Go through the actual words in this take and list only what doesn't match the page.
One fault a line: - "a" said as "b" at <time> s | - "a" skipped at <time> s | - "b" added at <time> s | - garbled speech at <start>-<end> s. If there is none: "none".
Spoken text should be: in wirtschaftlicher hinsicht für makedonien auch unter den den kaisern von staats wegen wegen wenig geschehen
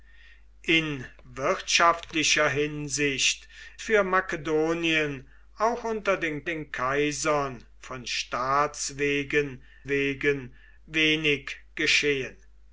none